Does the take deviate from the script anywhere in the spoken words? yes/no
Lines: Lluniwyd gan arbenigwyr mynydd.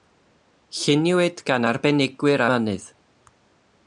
no